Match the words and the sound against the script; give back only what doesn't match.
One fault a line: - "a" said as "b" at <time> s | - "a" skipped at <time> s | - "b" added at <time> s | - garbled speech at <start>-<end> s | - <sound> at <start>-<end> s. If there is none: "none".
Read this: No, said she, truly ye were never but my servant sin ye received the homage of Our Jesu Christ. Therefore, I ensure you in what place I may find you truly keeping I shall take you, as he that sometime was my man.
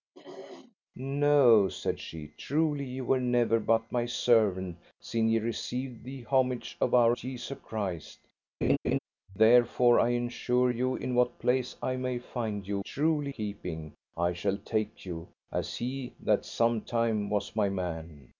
- throat clearing at 0.1-0.8 s
- laugh at 8.6-9.0 s